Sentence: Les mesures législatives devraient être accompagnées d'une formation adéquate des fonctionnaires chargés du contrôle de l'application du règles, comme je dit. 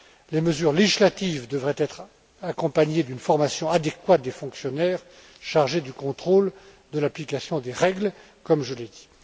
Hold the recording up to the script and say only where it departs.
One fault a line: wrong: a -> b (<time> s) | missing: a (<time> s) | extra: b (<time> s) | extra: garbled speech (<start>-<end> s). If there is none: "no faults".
wrong: du -> des (7.6 s)
extra: l'ai (8.8 s)